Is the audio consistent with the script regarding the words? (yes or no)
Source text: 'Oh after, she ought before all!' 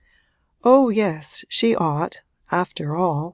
no